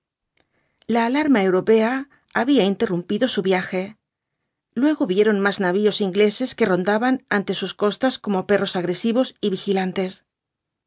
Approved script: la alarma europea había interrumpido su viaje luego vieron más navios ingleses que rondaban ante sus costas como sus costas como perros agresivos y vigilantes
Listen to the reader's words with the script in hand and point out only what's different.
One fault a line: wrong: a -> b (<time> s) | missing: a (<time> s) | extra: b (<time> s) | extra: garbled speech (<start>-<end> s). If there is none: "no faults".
missing: sus costas como (8.5 s)